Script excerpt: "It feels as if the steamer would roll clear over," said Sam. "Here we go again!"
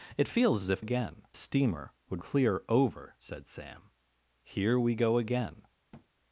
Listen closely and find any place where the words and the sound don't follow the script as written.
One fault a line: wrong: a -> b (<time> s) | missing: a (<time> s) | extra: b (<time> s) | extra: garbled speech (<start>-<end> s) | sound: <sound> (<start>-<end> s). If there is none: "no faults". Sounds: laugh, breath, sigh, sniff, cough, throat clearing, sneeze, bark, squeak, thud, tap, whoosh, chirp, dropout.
wrong: the -> again (0.8 s)
missing: roll (2.2 s)
sound: thud (5.9-6.1 s)